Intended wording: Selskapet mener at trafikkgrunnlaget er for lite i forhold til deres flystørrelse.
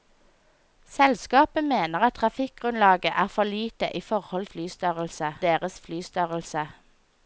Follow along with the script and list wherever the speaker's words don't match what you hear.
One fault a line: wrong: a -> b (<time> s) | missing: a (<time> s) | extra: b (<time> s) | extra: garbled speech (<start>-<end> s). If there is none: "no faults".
wrong: til -> flystørrelse (4.5 s)